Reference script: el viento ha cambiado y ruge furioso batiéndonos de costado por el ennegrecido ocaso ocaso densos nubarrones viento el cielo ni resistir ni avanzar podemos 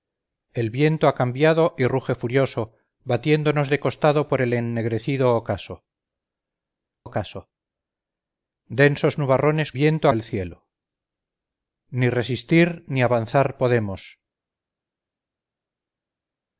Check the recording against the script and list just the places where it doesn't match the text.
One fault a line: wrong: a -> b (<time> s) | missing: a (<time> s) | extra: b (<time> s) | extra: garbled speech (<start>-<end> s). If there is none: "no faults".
no faults